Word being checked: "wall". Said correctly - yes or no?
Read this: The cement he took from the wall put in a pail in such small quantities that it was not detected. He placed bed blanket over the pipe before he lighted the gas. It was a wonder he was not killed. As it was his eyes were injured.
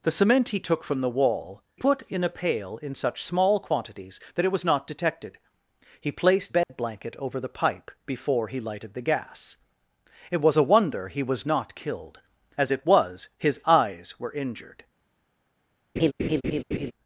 yes